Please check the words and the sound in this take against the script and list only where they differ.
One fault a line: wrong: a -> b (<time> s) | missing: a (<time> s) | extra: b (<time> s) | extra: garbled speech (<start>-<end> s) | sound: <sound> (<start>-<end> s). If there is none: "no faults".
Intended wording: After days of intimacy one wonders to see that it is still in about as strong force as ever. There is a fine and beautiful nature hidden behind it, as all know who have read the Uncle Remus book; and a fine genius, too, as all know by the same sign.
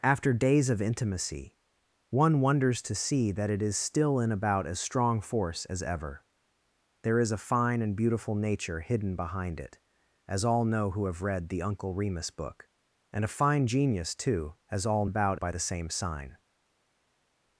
wrong: know -> about (15.0 s)